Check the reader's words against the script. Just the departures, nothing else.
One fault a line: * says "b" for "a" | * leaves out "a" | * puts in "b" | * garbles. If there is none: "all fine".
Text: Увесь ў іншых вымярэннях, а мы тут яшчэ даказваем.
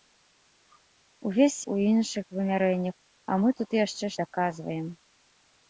all fine